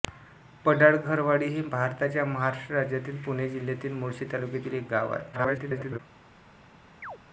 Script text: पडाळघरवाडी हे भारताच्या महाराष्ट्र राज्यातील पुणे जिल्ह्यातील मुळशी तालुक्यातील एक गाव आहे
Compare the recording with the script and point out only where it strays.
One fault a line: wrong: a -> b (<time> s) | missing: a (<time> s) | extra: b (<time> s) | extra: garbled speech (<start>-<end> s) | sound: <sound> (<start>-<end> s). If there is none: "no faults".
extra: garbled speech (5.3-6.0 s)
sound: chirp (7.0-7.2 s)